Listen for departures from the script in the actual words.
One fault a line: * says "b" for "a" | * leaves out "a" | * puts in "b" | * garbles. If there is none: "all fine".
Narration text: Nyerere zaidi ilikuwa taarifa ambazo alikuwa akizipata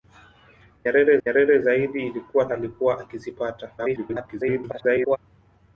* puts in "nyerere"
* leaves out "taarifa ambazo"
* garbles